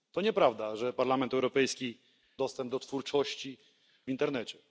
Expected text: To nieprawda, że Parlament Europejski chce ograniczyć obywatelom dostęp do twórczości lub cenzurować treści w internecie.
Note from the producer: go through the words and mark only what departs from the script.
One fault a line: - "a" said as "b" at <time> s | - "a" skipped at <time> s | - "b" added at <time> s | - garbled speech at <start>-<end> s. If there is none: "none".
- "chce ograniczyć obywatelom" skipped at 2.0 s
- "lub cenzurować treści" skipped at 3.6 s